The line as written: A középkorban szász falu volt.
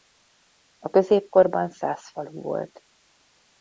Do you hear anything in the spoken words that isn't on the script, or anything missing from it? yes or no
no